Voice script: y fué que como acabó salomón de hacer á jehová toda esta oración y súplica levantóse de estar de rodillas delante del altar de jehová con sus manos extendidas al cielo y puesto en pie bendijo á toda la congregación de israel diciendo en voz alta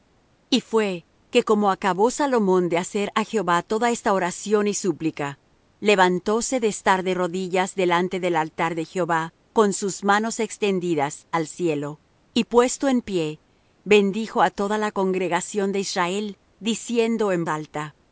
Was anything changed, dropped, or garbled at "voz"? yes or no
yes